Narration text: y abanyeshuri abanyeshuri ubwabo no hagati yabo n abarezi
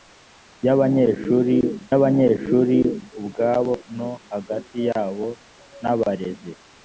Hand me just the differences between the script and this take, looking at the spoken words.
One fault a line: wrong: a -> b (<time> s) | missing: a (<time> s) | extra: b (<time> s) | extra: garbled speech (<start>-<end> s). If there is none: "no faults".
no faults